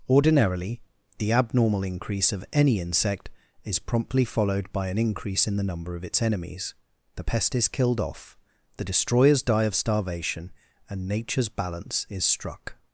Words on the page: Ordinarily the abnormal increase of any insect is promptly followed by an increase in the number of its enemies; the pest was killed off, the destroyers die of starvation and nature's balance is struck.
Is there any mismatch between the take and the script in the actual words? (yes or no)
yes